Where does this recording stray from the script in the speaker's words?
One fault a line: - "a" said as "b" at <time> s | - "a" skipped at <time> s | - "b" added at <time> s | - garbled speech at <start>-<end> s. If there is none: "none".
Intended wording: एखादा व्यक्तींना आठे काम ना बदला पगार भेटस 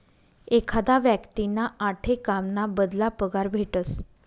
none